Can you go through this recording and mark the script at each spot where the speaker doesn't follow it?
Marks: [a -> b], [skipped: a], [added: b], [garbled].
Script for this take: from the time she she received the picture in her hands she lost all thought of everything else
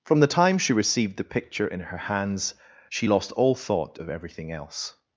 from the time she [skipped: she] received the picture in her hands she lost all thought of everything else